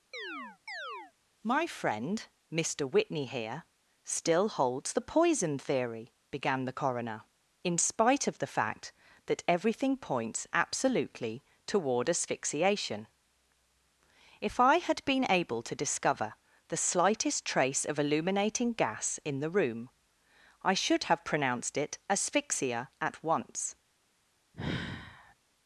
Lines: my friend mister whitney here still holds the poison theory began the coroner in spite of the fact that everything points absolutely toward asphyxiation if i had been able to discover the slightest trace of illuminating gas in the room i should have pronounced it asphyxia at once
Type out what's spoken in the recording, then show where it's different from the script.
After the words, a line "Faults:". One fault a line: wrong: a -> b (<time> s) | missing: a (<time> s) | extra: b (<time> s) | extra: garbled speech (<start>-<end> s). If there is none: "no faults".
my friend mister whitney here still holds the poison theory began the coroner in spite of the fact that everything points absolutely toward asphyxiation if i had been able to discover the slightest trace of illuminating gas in the room i should have pronounced it asphyxia at once
Faults:
no faults